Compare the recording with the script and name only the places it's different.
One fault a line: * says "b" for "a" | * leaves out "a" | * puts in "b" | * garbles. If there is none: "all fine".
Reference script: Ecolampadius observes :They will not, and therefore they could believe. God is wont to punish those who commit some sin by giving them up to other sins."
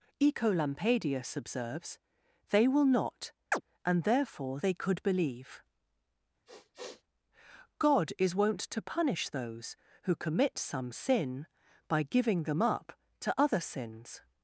all fine